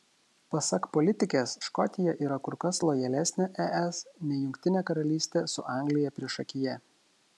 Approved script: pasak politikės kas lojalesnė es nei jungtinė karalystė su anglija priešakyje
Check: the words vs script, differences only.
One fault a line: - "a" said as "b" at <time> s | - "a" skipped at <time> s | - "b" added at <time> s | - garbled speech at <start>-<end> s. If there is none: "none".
- "škotija yra kur" added at 1.7 s